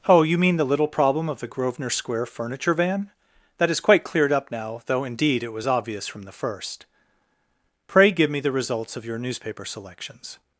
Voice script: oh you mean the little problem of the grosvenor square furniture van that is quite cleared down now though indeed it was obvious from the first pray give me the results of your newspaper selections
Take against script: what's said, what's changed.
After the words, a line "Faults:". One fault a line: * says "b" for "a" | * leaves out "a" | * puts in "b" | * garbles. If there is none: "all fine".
oh you mean the little problem of the grosvenor square furniture van that is quite cleared up now though indeed it was obvious from the first pray give me the results of your newspaper selections
Faults:
* says "up" for "down"